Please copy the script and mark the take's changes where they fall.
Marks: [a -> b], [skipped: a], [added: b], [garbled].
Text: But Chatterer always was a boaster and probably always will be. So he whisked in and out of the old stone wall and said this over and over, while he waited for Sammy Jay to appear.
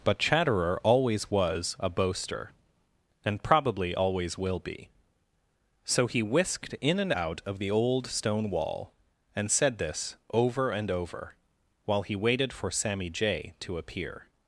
But Chatterer always was a boaster and probably always will be. So he whisked in and out of the old stone wall and said this over and over, while he waited for Sammy Jay to appear.